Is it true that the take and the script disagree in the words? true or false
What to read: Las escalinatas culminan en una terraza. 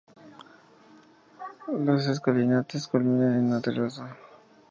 false